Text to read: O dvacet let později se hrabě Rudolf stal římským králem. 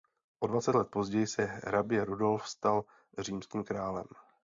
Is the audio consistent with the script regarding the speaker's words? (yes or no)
yes